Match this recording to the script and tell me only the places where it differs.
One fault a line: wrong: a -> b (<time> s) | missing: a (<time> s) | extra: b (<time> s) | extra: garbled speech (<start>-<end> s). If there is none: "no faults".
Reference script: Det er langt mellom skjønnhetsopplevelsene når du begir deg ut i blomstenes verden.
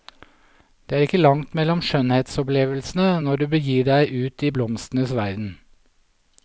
extra: ikke (1.1 s)